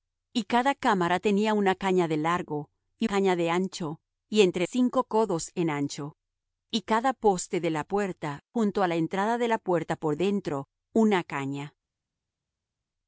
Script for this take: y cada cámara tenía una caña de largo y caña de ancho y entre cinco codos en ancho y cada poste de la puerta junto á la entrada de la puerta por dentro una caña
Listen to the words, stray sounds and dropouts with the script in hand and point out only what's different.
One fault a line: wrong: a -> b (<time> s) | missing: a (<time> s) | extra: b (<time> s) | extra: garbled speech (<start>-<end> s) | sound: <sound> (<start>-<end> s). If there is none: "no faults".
no faults